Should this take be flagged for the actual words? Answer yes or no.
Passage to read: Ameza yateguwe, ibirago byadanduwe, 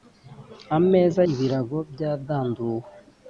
yes